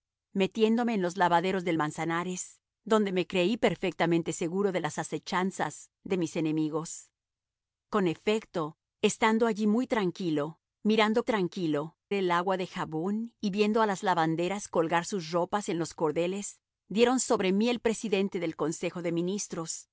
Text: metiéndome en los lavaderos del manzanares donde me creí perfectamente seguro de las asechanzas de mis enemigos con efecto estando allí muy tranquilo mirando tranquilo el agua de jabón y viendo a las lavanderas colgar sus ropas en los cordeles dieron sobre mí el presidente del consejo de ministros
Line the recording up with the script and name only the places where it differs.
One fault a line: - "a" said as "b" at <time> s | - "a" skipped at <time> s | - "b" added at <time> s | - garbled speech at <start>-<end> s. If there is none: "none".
none